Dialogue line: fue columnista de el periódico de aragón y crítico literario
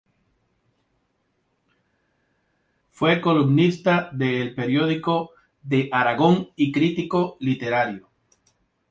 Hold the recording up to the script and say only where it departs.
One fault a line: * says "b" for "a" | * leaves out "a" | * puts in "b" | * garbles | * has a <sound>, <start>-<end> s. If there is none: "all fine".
all fine